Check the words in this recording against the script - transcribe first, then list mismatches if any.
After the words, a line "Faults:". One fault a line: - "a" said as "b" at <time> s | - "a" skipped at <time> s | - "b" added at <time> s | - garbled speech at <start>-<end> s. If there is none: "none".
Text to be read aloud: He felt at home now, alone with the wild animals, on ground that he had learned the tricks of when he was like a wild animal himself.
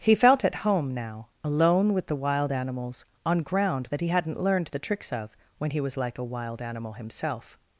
He felt at home now, alone with the wild animals, on ground that he hadn't learned the tricks of when he was like a wild animal himself.
Faults:
- "had" said as "hadn't" at 4.1 s